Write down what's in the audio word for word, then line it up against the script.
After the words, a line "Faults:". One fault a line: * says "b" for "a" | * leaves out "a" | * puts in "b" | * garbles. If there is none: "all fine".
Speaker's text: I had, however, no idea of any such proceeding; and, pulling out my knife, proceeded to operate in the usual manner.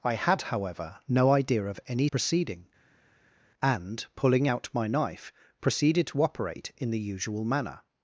I had, however, no idea of any proceeding; and, pulling out my knife, proceeded to operate in the usual manner.
Faults:
* leaves out "such"